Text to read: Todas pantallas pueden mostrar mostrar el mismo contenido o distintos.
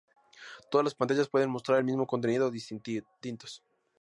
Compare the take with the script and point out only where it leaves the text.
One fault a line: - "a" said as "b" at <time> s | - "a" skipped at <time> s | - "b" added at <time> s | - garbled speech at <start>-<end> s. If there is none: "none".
- "las" added at 0.8 s
- "mostrar" skipped at 1.8 s